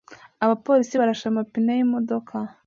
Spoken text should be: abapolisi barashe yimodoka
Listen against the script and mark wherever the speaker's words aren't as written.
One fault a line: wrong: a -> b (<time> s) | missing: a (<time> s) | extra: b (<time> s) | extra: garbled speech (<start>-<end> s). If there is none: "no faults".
extra: amapine (1.3 s)